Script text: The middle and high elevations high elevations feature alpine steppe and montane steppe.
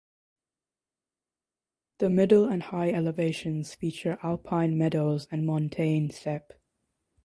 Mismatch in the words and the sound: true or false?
true